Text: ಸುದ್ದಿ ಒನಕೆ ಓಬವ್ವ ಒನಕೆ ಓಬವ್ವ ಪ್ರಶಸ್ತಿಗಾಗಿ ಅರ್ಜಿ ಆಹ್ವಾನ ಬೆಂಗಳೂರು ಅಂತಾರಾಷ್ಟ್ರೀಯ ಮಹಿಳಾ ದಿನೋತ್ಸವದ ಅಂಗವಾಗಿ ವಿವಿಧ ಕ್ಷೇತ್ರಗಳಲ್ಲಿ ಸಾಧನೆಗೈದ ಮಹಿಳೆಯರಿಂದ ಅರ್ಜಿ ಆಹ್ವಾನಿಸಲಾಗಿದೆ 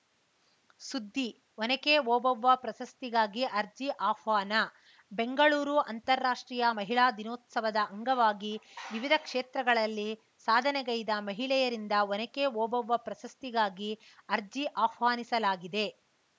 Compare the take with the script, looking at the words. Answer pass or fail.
fail